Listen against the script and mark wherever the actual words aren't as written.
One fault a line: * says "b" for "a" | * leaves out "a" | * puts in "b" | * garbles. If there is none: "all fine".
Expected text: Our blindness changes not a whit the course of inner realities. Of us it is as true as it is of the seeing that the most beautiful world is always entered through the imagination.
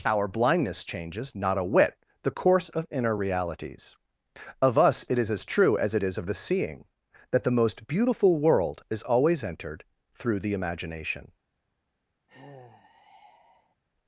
all fine